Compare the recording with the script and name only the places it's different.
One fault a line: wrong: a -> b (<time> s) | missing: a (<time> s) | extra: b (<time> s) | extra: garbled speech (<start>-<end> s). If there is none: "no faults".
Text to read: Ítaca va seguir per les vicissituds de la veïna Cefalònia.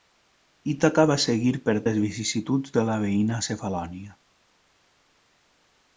no faults